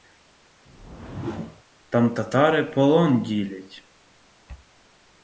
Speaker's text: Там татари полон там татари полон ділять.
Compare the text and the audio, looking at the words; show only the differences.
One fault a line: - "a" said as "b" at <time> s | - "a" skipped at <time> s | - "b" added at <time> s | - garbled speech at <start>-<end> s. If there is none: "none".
- "там татари полон" skipped at 3.2 s